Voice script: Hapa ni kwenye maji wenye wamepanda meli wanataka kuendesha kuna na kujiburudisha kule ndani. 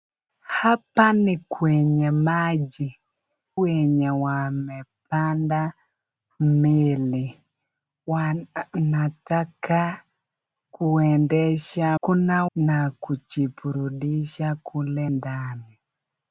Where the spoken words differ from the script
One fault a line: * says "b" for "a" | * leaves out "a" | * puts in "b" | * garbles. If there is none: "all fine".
all fine